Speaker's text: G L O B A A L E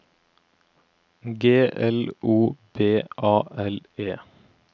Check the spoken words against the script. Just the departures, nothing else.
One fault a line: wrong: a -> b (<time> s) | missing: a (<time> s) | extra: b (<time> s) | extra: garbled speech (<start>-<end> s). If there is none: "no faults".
missing: A (3.3 s)